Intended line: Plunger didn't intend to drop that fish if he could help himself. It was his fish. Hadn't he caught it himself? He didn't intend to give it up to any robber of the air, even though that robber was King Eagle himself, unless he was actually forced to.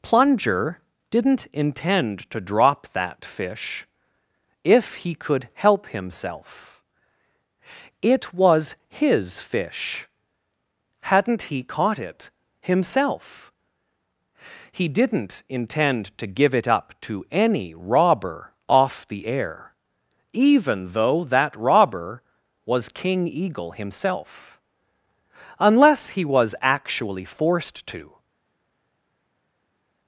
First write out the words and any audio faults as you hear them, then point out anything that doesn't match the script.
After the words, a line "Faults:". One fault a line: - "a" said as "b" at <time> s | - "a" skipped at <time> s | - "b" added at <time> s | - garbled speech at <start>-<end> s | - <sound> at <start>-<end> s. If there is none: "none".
Plunger didn't intend to drop that fish if he could help himself. It was his fish. Hadn't he caught it himself? He didn't intend to give it up to any robber off the air, even though that robber was King Eagle himself, unless he was actually forced to.
Faults:
- "of" said as "off" at 18.7 s